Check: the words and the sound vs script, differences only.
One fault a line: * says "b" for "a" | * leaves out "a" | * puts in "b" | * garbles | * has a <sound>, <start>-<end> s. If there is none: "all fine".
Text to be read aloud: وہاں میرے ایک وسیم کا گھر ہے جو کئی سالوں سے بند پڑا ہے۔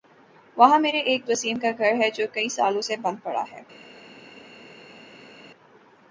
all fine